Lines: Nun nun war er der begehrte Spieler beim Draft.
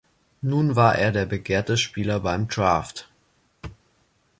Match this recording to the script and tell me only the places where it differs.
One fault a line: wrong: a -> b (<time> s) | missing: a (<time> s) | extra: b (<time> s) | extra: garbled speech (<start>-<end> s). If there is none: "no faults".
missing: nun (0.8 s)